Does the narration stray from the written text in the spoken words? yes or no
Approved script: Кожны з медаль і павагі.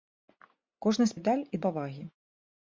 no